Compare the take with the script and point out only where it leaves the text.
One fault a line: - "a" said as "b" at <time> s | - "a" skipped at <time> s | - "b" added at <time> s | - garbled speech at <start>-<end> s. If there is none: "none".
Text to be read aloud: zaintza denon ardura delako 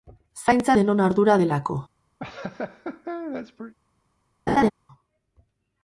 none